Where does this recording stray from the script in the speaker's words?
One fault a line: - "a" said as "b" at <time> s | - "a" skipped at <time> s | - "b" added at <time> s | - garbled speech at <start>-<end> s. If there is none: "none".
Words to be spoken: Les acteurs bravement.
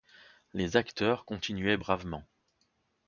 - "continuaient" added at 1.2 s